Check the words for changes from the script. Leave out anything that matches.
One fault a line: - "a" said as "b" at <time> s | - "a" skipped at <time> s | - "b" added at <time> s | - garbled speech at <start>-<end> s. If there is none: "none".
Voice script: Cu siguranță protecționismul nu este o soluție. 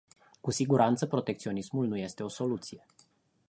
none